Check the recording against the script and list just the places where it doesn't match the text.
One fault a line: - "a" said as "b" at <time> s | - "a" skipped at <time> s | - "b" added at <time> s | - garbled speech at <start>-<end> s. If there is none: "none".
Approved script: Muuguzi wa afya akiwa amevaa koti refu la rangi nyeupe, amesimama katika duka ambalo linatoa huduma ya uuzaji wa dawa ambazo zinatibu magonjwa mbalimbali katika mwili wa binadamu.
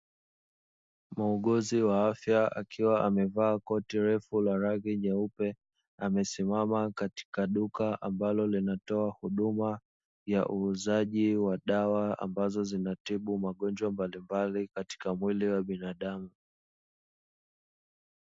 none